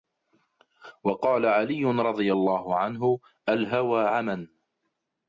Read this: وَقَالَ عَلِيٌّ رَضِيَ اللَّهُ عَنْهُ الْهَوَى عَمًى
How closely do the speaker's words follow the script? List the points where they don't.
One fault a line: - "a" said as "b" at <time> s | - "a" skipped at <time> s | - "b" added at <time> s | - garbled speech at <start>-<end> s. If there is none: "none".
none